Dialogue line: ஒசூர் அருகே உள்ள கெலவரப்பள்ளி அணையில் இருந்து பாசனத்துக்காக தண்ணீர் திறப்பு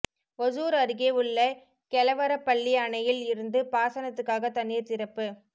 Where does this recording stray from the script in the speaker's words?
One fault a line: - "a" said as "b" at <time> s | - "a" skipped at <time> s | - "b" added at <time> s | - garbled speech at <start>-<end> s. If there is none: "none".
none